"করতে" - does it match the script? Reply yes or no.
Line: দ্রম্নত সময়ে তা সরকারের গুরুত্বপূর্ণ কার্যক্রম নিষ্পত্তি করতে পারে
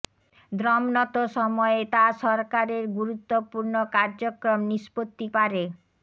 no